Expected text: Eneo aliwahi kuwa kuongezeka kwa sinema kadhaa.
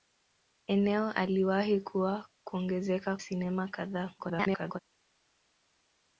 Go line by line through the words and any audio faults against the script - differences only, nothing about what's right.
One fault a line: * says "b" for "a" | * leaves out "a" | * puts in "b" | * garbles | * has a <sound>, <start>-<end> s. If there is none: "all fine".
* leaves out "kwa"
* garbles